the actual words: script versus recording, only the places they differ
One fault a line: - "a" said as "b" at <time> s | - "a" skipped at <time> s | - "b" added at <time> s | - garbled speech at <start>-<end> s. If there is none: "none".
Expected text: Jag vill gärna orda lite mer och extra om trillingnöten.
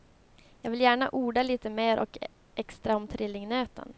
none